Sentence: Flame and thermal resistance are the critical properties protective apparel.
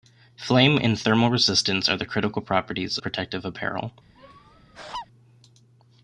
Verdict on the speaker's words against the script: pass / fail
pass